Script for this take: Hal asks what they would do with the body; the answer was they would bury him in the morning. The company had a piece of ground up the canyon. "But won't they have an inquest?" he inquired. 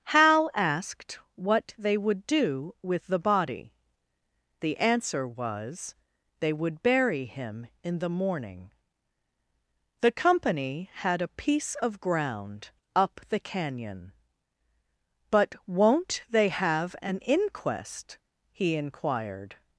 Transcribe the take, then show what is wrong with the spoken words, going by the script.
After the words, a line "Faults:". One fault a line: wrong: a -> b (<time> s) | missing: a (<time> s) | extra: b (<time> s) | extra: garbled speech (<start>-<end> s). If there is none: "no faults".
Hal asked what they would do with the body; the answer was they would bury him in the morning. The company had a piece of ground up the canyon. "But won't they have an inquest?" he inquired.
Faults:
wrong: asks -> asked (0.5 s)